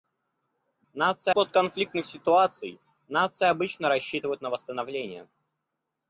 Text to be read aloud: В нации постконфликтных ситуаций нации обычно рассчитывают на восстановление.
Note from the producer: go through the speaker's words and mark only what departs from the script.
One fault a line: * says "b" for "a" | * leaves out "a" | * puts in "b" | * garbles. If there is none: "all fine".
all fine